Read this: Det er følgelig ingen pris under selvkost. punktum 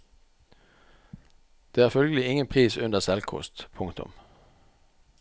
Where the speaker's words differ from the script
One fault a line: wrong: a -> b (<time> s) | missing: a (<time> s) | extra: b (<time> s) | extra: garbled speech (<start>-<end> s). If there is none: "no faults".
no faults